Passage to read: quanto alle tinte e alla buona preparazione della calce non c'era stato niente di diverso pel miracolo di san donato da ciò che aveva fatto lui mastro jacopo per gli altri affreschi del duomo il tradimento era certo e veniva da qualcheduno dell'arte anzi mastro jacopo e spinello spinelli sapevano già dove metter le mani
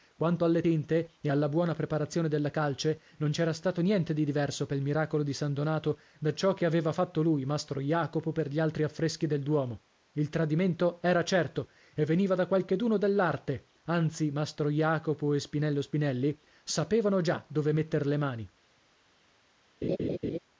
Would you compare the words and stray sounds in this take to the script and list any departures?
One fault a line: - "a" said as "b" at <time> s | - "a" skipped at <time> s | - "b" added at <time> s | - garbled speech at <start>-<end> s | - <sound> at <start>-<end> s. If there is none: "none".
- laugh at 19.8-20.4 s